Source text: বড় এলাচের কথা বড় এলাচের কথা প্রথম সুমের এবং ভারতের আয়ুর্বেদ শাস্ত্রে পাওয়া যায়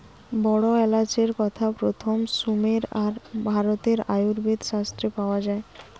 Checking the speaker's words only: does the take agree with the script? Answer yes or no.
no